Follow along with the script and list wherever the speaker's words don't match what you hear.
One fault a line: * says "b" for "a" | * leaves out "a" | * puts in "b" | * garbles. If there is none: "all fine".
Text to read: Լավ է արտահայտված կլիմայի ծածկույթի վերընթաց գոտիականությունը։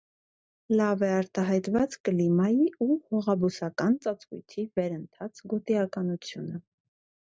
* puts in "ու հողաբուսական"